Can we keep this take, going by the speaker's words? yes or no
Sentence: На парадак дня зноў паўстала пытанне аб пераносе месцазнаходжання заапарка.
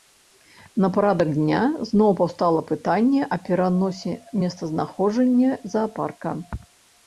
yes